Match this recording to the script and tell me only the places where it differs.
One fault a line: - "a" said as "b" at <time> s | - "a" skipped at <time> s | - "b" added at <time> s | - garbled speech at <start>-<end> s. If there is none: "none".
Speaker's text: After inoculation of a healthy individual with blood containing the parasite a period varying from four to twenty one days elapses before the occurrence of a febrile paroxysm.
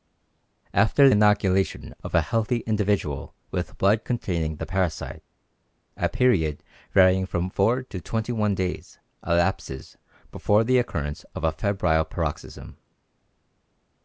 none